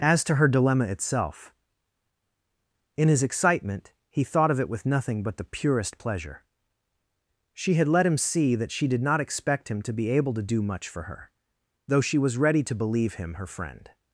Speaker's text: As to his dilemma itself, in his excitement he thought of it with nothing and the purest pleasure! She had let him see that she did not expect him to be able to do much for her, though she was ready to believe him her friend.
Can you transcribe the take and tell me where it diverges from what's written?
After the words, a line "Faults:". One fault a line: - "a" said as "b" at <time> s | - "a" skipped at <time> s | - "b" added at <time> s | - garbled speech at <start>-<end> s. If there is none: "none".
As to her dilemma itself, in his excitement he thought of it with nothing but the purest pleasure! She had let him see that she did not expect him to be able to do much for her, though she was ready to believe him her friend.
Faults:
- "his" said as "her" at 0.3 s
- "and" said as "but" at 5.2 s